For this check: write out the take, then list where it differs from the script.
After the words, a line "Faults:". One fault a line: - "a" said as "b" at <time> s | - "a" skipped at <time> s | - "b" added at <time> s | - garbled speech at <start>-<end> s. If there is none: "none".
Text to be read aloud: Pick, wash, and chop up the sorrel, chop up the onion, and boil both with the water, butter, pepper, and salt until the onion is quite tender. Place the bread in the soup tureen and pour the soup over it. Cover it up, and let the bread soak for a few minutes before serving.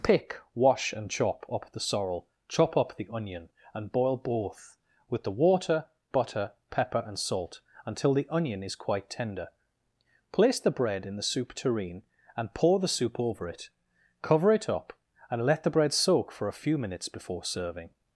Pick, wash, and chop up the sorrel, chop up the onion, and boil both with the water, butter, pepper, and salt until the onion is quite tender. Place the bread in the soup tureen and pour the soup over it. Cover it up, and let the bread soak for a few minutes before serving.
Faults:
none